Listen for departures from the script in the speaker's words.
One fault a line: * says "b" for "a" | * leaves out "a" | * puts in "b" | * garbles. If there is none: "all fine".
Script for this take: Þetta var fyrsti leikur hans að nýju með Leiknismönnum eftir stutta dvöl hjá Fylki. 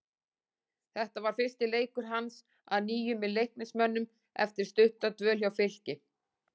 all fine